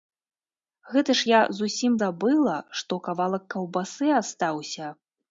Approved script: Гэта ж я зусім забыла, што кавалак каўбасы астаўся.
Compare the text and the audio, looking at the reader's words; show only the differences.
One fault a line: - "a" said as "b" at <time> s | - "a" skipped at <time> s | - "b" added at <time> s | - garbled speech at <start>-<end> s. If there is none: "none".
none